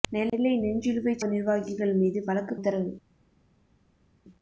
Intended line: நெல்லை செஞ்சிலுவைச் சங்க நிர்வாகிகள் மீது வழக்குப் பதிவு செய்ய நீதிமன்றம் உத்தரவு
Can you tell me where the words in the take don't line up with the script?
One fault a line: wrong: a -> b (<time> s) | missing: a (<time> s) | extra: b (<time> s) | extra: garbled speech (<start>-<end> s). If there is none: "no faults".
missing: சங்க (1.2 s)
missing: பதிவு செய்ய நீதிமன்றம் (2.6 s)